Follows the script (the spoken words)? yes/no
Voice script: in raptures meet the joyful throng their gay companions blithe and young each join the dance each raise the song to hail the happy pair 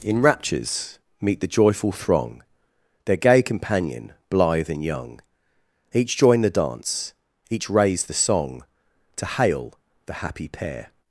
no